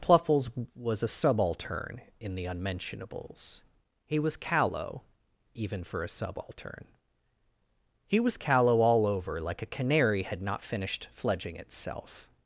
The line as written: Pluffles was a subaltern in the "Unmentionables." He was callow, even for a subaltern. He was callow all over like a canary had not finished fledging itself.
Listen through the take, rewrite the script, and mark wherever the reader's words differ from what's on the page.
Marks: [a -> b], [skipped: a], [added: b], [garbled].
Pluffles was a subaltern in the "Unmentionables." He was callow, even for a subaltern. He was callow all over like a canary had not finished fledging itself.